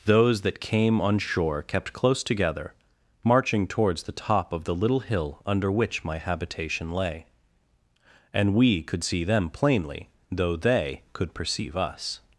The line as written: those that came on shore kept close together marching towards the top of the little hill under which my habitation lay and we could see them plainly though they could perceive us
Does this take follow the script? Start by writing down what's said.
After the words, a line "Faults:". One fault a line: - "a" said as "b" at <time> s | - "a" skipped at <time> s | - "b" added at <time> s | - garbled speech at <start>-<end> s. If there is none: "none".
those that came on shore kept close together marching towards the top of the little hill under which my habitation lay and we could see them plainly though they could perceive us
Faults:
none